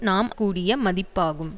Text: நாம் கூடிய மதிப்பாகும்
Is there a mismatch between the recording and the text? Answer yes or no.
no